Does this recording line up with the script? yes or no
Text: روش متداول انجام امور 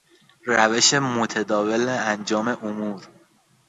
yes